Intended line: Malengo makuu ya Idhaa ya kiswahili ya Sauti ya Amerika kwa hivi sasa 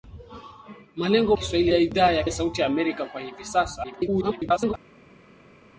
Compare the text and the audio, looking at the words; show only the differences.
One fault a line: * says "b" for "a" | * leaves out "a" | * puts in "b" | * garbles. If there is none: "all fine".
* says "kiswahili" for "makuu"
* leaves out "kiswahili"
* garbles